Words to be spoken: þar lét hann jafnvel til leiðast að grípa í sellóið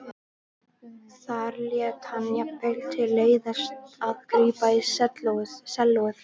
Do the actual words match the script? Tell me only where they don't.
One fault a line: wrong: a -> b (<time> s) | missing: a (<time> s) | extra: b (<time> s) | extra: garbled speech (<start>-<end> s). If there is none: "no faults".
no faults